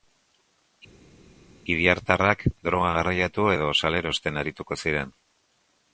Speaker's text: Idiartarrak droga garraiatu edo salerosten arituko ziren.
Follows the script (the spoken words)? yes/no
yes